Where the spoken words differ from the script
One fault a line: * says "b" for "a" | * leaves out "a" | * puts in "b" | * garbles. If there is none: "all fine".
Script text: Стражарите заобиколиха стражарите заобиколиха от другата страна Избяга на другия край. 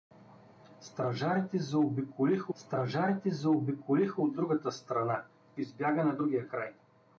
all fine